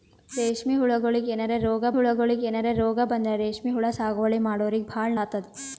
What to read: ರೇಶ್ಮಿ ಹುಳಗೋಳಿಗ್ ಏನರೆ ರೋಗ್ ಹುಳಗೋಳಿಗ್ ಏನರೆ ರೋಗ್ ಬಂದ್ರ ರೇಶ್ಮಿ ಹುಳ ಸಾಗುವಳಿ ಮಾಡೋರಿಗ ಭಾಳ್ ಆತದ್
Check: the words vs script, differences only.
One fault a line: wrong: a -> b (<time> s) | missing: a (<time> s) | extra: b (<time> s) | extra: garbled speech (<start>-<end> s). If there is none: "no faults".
no faults